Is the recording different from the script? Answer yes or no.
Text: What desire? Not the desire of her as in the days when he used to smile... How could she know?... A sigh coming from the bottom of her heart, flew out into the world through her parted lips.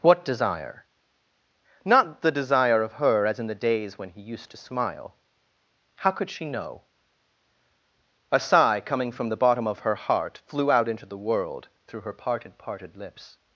yes